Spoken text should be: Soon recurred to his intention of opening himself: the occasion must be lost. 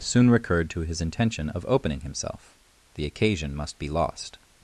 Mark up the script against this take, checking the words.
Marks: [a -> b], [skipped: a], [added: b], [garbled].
Soon recurred to his intention of opening himself: the occasion must be lost.